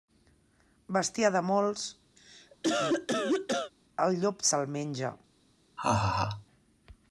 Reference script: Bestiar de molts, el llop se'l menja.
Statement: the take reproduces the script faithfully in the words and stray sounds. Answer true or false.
false